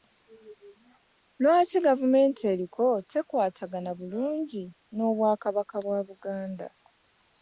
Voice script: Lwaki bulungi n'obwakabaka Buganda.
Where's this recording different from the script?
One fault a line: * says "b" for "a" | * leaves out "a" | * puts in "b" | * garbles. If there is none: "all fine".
* puts in "gavumenti eriko tekwatagana"
* puts in "bwa"